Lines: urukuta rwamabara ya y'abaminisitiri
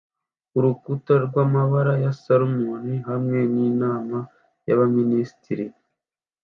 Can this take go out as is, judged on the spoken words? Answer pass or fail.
fail